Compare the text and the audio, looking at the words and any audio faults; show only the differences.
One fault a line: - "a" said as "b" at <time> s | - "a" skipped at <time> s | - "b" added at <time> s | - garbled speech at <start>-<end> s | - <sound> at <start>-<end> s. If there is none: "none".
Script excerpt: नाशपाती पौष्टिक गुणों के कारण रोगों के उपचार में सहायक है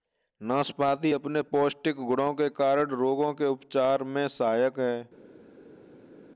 - "अपने" added at 1.1 s